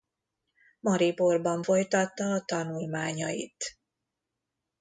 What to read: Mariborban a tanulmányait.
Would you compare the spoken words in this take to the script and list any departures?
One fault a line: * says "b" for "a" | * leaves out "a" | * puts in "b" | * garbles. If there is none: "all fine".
* puts in "folytatta"